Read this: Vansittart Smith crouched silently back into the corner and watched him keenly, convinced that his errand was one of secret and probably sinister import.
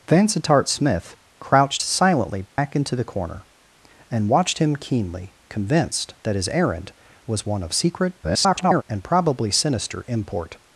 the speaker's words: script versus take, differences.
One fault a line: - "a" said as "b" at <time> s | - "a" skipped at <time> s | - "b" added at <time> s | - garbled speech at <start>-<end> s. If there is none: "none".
- garbled speech at 8.2-8.8 s